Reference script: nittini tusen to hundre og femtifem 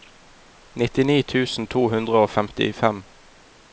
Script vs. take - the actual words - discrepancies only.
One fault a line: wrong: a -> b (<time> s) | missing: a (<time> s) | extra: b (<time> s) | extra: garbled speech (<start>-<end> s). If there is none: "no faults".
no faults